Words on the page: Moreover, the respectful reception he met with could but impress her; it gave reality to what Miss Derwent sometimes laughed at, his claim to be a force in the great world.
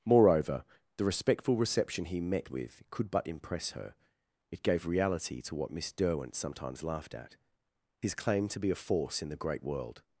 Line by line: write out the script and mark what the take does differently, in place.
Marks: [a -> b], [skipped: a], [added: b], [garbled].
Moreover, the respectful reception he met with could but impress her; it gave reality to what Miss Derwent sometimes laughed at, his claim to be a force in the great world.